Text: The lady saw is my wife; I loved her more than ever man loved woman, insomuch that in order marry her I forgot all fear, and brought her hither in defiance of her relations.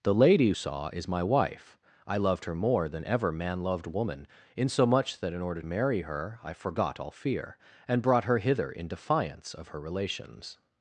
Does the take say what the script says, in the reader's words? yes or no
yes